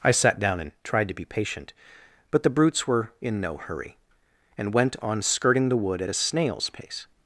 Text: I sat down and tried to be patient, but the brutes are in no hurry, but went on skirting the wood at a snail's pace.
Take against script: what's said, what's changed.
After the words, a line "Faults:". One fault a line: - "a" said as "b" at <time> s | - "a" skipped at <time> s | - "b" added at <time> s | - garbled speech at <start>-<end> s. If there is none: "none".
I sat down and tried to be patient, but the brutes were in no hurry, and went on skirting the wood at a snail's pace.
Faults:
- "are" said as "were" at 2.9 s
- "but" said as "and" at 4.6 s